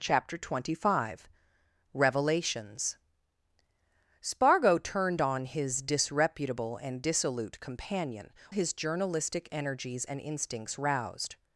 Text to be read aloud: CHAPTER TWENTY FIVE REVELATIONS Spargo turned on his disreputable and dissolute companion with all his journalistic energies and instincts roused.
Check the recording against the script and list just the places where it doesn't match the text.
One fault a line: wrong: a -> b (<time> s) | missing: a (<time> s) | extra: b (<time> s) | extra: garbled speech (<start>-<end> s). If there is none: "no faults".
missing: with all (8.3 s)